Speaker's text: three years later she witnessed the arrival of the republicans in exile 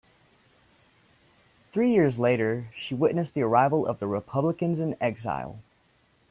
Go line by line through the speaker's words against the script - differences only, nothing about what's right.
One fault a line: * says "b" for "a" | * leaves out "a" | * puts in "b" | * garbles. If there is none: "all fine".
all fine